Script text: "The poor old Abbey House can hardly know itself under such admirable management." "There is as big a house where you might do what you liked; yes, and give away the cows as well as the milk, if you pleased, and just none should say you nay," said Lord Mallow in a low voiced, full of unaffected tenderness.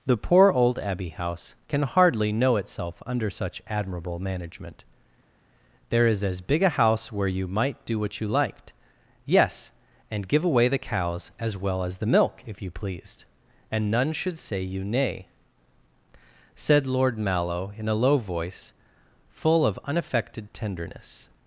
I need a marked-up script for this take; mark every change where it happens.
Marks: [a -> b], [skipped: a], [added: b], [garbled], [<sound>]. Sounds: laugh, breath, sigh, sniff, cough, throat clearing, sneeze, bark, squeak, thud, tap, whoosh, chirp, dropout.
"The poor old Abbey House can hardly know itself under such admirable management." "There is as big a house where you might do what you liked; yes, and give away the cows as well as the milk, if you pleased, and [skipped: just] none should say you nay," said Lord Mallow in a low [voiced, -> voice] full of unaffected tenderness.